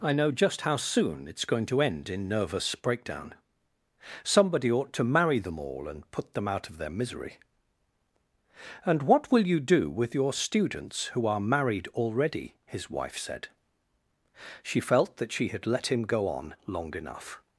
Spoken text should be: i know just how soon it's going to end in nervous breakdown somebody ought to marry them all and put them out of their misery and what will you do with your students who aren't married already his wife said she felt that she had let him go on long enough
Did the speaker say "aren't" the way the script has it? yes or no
no